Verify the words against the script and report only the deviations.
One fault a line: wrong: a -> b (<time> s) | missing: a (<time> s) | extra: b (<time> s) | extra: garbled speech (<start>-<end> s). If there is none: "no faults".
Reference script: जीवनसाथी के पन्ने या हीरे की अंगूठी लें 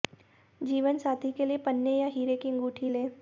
extra: लिए (1.4 s)